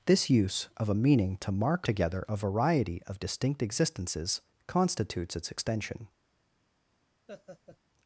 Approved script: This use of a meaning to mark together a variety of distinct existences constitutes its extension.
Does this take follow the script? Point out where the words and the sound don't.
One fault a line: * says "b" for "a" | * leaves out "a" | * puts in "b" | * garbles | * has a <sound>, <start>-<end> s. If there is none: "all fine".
* has a laugh, 7.3-7.8 s